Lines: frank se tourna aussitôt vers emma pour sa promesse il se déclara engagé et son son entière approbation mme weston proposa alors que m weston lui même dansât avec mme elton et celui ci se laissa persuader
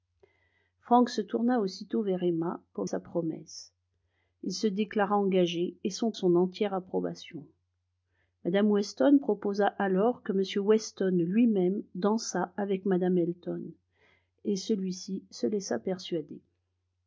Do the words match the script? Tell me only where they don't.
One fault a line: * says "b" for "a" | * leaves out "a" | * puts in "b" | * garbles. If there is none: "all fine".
all fine